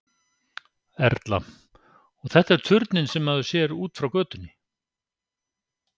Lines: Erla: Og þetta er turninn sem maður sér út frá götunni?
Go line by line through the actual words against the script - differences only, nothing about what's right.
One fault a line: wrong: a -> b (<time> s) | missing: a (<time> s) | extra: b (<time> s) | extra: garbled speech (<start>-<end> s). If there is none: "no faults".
no faults